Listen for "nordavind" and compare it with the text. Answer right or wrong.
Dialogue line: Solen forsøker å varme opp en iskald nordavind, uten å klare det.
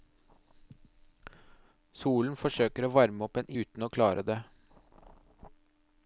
wrong